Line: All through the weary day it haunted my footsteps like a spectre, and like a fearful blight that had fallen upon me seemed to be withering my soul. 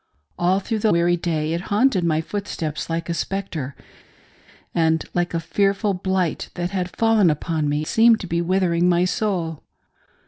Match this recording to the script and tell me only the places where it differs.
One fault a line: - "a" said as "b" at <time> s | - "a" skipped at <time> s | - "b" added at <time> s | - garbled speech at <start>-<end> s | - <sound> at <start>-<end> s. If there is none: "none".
none